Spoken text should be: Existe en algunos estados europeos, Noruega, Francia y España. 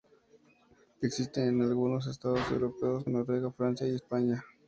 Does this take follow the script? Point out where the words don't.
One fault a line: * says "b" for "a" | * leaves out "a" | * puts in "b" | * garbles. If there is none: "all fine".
all fine